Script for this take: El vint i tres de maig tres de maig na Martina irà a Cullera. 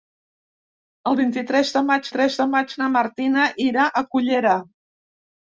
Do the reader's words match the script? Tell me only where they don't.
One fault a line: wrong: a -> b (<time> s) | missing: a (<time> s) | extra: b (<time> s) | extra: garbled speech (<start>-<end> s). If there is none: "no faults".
no faults